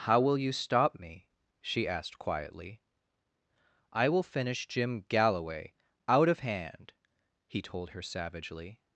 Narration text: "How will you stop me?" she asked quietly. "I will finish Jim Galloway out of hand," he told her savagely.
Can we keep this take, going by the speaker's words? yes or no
yes